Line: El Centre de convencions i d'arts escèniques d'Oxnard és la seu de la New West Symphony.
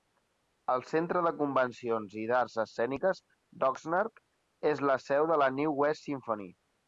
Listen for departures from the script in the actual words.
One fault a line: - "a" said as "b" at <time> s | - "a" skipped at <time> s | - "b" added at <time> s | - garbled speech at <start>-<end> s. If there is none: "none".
none